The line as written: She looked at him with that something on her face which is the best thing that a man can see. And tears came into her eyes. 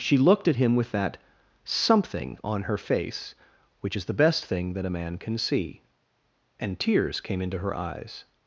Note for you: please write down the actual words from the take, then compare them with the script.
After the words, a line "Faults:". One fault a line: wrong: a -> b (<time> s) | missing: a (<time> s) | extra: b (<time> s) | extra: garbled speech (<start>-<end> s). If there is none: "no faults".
She looked at him with that something on her face which is the best thing that a man can see. And tears came into her eyes.
Faults:
no faults